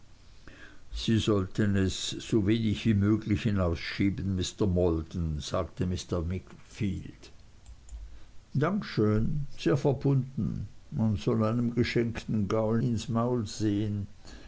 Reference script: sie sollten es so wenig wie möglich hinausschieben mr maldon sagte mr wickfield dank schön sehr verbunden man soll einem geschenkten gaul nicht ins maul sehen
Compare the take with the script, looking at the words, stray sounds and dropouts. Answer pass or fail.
fail